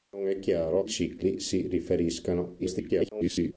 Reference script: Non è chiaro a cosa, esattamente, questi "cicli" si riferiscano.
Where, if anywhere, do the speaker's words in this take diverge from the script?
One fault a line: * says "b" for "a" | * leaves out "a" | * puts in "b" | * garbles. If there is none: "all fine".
* leaves out "cosa esattamente questi"
* garbles